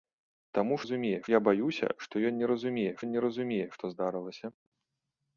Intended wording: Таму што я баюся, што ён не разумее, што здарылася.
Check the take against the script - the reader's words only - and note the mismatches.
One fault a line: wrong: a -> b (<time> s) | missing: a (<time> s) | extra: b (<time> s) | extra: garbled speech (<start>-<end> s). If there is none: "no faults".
wrong: што -> разумее (0.8 s)
extra: ён не разумее (3.1 s)